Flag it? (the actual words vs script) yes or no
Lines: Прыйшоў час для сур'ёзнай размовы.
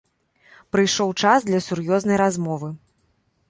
no